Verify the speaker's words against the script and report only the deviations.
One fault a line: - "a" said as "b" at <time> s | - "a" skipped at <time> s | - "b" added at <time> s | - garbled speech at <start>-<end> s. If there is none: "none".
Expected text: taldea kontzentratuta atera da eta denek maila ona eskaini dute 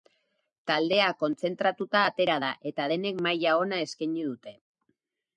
none